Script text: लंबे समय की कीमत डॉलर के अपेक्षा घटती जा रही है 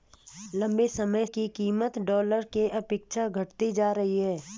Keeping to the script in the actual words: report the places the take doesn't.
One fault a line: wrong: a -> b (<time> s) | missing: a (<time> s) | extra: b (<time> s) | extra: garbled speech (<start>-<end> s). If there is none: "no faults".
no faults